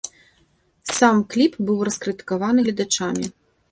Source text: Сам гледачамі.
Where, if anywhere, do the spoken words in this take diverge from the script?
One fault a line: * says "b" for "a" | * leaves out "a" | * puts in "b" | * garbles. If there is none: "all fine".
* puts in "кліп быў раскрытыкаваны"